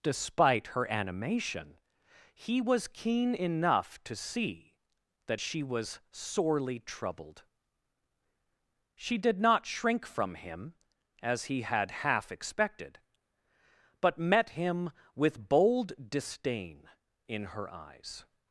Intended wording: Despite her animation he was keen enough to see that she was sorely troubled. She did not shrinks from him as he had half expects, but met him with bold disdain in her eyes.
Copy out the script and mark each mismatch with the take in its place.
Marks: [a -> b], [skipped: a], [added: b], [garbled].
Despite her animation he was keen enough to see that she was sorely troubled. She did not [shrinks -> shrink] from him as he had half [expects, -> expected] but met him with bold disdain in her eyes.